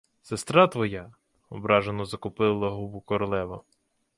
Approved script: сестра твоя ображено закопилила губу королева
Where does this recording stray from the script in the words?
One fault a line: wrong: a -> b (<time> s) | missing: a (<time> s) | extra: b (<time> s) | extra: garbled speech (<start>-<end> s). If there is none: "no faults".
no faults